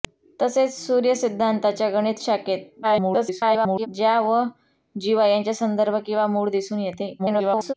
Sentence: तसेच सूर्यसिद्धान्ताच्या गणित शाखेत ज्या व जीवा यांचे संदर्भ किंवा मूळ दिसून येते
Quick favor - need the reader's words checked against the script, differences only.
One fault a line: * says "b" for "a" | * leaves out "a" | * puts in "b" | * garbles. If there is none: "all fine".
* garbles
* garbles